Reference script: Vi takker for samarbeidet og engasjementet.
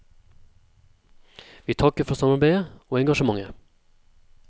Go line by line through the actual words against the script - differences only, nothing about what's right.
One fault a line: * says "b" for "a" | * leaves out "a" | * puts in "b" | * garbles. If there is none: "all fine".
all fine